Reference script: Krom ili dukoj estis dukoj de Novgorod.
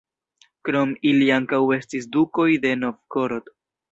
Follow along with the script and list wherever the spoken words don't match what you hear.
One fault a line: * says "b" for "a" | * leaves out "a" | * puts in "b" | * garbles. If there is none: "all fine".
* says "ankaŭ" for "dukoj"